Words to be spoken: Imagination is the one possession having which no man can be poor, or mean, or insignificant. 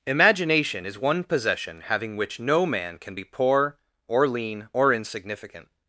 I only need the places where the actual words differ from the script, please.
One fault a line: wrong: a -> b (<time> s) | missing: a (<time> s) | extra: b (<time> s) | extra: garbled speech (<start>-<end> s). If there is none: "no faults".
missing: the (1.0 s)
wrong: mean -> lean (4.3 s)